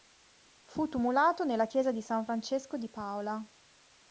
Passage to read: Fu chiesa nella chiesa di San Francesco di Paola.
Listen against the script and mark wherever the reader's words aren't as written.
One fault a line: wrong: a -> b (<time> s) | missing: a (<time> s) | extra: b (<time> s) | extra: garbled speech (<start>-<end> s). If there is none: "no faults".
wrong: chiesa -> tumulato (0.9 s)